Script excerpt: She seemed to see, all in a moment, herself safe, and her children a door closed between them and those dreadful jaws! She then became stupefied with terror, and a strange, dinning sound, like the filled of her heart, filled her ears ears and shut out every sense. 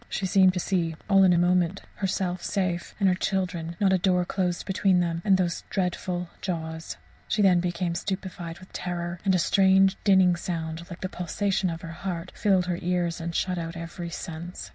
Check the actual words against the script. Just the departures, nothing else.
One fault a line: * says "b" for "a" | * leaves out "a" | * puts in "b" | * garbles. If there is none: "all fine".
* puts in "not"
* says "pulsation" for "filled"
* leaves out "ears"